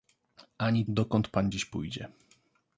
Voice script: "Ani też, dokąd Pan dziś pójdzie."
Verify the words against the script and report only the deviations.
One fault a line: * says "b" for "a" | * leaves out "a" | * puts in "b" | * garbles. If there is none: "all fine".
* leaves out "też"